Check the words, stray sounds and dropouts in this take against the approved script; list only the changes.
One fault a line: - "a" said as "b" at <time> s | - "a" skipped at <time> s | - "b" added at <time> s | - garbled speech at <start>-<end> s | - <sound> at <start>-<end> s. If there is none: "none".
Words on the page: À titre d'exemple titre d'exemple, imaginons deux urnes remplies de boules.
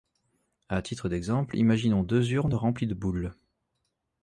- "titre d'exemple" skipped at 1.6 s